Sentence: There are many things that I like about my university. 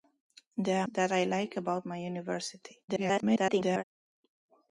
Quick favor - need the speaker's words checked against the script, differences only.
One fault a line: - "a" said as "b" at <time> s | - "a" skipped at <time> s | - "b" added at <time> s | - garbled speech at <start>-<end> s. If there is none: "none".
- "many things" skipped at 0.9 s
- garbled speech at 2.9-3.8 s